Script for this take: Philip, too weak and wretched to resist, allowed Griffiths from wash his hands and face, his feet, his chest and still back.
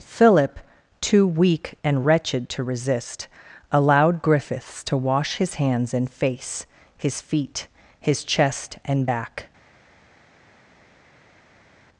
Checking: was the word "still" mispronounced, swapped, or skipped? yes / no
yes